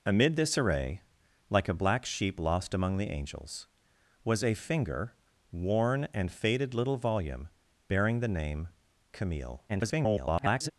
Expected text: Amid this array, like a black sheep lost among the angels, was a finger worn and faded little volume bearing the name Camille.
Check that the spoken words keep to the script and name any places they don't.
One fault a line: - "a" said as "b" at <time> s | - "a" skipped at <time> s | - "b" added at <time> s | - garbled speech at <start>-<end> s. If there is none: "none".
- garbled speech at 9.7-10.7 s